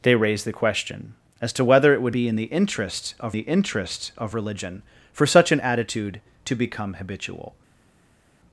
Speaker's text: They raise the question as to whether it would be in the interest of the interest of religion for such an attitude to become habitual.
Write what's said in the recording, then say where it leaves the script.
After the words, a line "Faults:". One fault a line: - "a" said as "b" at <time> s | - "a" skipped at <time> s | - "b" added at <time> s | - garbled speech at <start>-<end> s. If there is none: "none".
They raise the question as to whether it would be in the interest of the interest of religion for such an attitude to become habitual.
Faults:
none